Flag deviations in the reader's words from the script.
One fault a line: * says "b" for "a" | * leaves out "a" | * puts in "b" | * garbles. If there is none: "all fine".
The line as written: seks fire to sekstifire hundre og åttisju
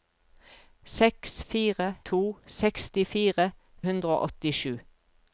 all fine